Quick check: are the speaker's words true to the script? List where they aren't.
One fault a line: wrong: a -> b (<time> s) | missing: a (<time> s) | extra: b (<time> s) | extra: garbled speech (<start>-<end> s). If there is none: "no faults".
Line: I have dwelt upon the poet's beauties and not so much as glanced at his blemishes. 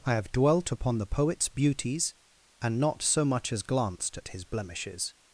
no faults